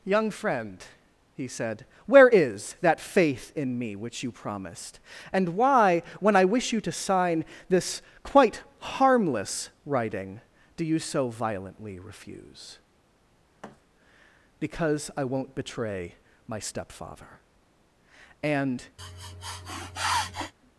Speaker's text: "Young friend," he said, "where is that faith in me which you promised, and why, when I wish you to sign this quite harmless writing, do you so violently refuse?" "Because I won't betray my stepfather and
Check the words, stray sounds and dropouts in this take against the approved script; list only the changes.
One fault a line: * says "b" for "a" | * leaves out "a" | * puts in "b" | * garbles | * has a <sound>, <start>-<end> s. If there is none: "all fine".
* has a thud, 13.6-13.8 s
* has a sniff, 19.0-20.5 s